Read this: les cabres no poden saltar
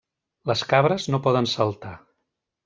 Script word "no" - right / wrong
right